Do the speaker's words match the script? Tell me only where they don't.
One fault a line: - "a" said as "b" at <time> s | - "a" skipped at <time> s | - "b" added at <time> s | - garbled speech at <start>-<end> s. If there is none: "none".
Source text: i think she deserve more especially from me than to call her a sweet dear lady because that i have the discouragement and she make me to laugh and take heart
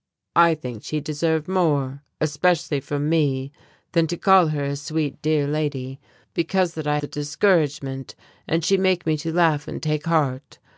- "have" skipped at 7.0 s